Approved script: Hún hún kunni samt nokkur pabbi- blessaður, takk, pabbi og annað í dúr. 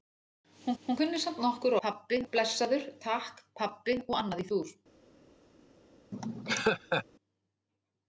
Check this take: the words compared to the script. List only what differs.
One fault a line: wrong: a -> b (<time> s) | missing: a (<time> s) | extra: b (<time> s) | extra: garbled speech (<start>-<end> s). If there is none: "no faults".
no faults